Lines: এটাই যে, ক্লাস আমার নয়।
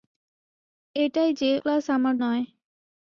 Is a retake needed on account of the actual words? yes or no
no